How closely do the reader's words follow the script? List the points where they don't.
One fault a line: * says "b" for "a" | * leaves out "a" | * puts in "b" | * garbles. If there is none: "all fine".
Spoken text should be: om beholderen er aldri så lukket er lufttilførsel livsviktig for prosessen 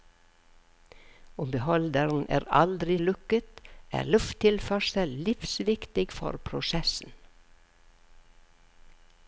* leaves out "så"